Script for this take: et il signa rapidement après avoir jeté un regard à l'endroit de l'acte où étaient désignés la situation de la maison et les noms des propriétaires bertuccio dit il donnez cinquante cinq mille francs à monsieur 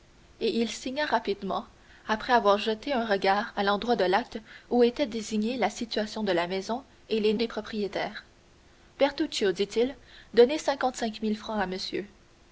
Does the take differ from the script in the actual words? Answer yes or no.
yes